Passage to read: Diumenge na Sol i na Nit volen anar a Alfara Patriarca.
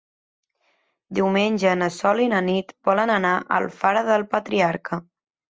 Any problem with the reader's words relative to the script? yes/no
yes